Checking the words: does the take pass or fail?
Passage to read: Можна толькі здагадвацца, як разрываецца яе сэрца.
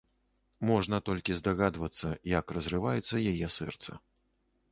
pass